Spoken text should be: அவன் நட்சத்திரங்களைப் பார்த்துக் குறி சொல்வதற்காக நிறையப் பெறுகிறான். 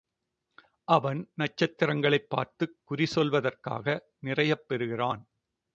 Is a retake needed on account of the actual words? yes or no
no